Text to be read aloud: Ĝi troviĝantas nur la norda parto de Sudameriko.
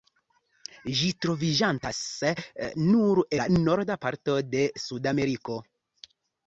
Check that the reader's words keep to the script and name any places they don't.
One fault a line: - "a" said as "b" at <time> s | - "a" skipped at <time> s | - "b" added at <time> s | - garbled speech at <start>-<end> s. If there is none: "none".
none